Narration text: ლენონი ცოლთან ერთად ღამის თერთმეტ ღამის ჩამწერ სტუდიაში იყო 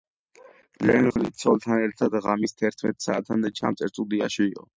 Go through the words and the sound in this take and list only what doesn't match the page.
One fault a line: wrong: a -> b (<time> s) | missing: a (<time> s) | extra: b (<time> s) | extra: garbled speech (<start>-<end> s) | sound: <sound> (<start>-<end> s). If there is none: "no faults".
sound: dropout (1.1-1.2 s)
wrong: ღამის -> საათამდე (3.1 s)